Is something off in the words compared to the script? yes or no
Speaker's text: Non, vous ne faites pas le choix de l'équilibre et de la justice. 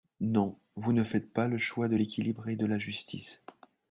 no